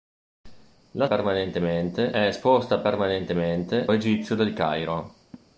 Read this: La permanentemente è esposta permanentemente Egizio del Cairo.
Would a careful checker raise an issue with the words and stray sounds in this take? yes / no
yes